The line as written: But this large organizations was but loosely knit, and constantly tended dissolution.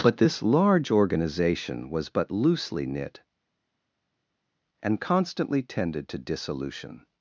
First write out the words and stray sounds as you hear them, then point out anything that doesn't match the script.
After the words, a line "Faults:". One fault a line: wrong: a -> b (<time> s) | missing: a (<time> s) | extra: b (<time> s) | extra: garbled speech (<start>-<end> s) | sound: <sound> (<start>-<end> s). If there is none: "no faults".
But this large organization was but loosely knit, and constantly tended to dissolution.
Faults:
wrong: organizations -> organization (0.9 s)
extra: to (6.1 s)